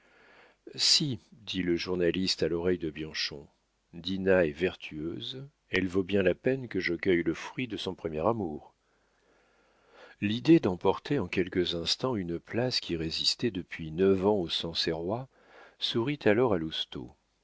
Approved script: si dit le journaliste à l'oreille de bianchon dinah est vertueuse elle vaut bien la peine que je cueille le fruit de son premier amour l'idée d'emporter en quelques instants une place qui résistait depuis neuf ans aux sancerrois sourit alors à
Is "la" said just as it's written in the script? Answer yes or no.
yes